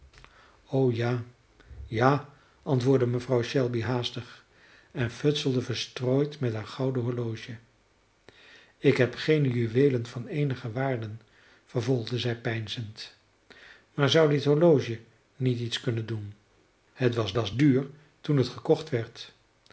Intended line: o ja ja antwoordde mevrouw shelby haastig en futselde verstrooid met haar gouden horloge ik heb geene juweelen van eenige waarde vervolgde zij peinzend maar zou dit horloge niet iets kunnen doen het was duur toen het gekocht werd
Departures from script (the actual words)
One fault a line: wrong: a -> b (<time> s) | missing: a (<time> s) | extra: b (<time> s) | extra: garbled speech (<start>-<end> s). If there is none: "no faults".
extra: was (17.3 s)